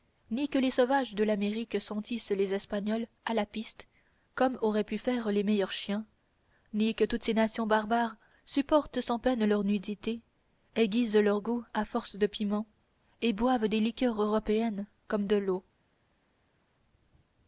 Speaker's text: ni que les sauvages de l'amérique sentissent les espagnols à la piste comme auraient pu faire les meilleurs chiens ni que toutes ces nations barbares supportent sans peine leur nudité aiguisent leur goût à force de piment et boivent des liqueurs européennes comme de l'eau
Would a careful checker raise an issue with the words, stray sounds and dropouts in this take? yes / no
no